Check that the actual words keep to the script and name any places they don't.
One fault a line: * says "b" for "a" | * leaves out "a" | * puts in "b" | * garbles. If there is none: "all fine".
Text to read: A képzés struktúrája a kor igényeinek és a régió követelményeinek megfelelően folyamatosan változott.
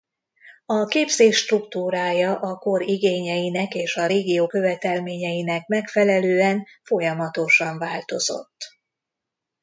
all fine